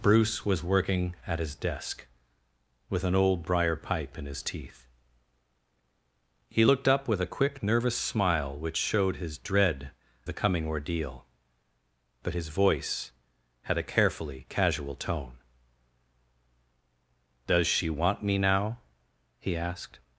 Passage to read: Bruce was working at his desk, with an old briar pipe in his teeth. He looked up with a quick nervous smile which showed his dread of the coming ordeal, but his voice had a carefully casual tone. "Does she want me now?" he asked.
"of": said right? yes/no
no